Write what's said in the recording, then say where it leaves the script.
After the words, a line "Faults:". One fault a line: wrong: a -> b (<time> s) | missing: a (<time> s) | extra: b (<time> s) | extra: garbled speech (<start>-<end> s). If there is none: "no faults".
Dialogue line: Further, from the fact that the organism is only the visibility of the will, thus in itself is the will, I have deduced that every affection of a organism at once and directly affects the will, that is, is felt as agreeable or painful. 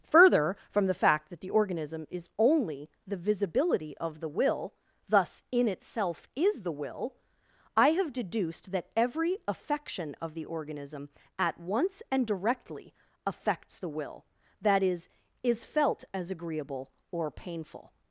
Further, from the fact that the organism is only the visibility of the will, thus in itself is the will, I have deduced that every affection of the organism at once and directly affects the will, that is, is felt as agreeable or painful.
Faults:
wrong: a -> the (10.3 s)